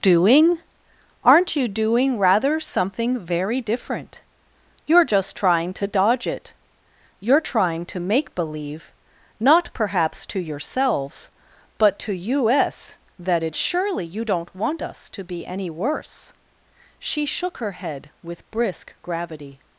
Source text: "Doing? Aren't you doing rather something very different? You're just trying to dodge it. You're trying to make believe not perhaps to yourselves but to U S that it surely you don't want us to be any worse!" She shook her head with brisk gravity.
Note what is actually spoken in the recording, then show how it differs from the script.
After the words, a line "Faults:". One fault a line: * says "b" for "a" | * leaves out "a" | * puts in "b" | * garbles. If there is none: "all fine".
"Doing? Aren't you doing rather something very different? You're just trying to dodge it. You're trying to make believe not perhaps to yourselves but to U S that it surely you don't want us to be any worse!" She shook her head with brisk gravity.
Faults:
all fine